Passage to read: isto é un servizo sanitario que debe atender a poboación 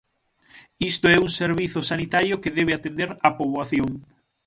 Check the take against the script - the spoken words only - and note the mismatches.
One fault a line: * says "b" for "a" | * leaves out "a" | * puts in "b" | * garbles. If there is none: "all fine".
all fine